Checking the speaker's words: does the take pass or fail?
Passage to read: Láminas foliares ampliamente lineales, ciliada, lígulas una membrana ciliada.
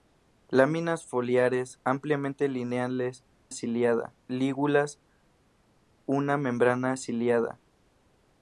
pass